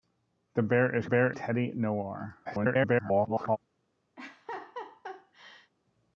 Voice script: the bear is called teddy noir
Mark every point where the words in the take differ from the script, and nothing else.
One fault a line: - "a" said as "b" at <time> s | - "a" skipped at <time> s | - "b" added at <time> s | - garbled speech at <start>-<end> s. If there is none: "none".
- "called" said as "bear" at 1.0 s
- garbled speech at 2.4-3.6 s